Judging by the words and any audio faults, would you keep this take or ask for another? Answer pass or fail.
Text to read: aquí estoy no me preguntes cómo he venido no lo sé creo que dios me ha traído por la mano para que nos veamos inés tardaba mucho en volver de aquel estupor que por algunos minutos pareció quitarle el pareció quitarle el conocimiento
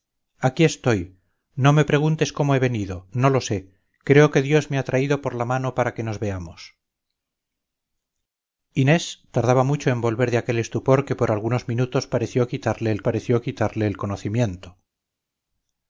pass